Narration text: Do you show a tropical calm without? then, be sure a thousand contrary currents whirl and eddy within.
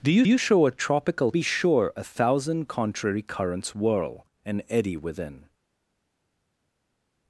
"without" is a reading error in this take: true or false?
true